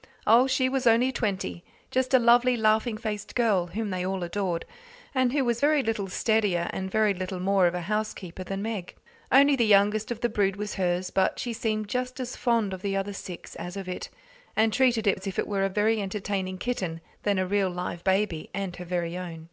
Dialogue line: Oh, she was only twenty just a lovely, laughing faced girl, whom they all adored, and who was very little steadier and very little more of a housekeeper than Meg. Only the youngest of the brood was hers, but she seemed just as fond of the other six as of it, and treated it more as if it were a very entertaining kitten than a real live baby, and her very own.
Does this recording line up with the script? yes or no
no